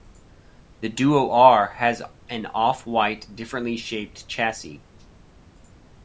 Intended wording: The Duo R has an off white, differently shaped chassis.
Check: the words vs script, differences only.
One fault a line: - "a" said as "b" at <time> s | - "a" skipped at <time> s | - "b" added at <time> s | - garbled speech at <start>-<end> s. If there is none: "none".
none